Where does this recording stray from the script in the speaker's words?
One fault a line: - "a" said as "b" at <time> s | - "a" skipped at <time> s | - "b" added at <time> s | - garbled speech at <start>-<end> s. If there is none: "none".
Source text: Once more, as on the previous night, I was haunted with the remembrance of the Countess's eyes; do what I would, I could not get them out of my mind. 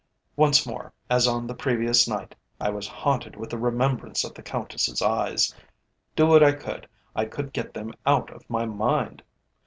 - "not" skipped at 7.5 s